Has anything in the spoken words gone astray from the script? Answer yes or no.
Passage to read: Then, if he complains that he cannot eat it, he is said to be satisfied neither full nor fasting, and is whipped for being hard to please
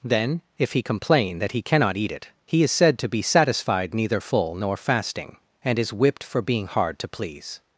yes